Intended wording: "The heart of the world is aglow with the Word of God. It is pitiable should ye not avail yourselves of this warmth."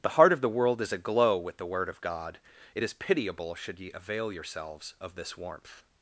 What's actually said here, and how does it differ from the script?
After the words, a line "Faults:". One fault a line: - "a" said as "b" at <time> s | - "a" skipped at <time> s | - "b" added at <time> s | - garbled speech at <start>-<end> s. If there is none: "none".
"The heart of the world is aglow with the Word of God. It is pitiable should ye avail yourselves of this warmth."
Faults:
- "not" skipped at 3.9 s